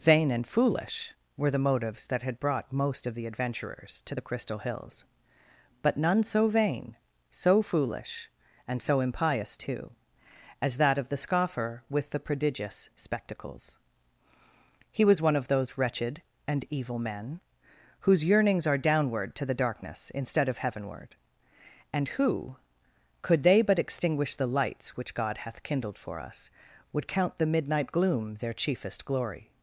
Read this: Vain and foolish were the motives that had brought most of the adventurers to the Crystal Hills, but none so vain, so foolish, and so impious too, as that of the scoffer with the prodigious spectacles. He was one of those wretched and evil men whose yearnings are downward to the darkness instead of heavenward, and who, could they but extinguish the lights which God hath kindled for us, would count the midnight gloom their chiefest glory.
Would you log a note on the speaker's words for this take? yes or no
no